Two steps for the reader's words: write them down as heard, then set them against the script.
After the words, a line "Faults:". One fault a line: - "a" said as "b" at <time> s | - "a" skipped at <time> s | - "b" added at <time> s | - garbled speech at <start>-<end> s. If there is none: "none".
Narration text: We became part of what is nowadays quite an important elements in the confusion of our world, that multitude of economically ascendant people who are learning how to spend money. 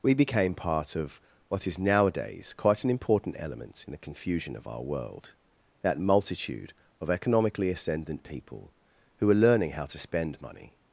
We became part of what is nowadays quite an important element in the confusion of our world, that multitude of economically ascendant people who are learning how to spend money.
Faults:
- "elements" said as "element" at 3.4 s